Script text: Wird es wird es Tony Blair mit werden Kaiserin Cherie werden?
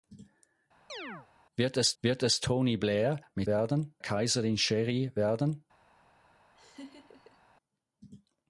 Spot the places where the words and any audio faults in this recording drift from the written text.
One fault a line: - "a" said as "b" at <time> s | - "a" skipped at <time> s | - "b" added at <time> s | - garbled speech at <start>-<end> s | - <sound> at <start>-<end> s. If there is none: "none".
- chirp at 0.9-1.3 s
- laugh at 6.5-7.4 s